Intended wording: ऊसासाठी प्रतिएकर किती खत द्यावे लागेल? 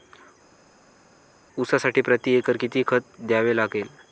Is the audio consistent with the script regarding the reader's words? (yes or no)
yes